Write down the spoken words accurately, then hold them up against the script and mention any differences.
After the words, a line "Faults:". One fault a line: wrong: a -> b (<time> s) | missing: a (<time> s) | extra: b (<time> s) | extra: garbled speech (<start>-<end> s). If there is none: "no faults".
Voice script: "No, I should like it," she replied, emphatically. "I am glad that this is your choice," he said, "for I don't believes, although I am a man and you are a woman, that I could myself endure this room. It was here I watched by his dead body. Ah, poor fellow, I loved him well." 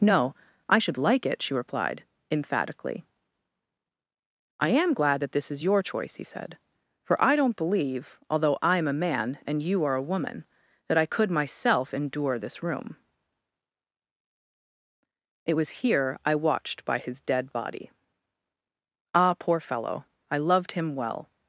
"No, I should like it," she replied, emphatically. "I am glad that this is your choice," he said, "for I don't believe, although I am a man and you are a woman, that I could myself endure this room. It was here I watched by his dead body. Ah, poor fellow, I loved him well."
Faults:
wrong: believes -> believe (7.6 s)